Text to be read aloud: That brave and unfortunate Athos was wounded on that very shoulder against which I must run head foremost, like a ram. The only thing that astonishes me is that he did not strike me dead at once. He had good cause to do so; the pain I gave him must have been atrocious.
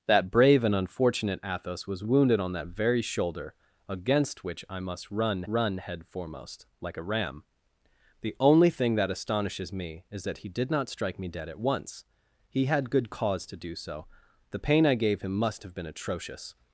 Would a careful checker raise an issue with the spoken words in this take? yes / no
yes